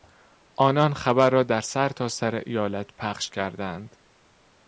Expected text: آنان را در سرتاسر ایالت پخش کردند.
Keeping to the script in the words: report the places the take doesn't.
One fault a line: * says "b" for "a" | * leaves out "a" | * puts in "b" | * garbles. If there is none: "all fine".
* puts in "خبر"